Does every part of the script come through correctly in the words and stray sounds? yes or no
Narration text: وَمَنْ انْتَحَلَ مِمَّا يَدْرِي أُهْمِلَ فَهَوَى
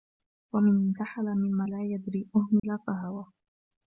no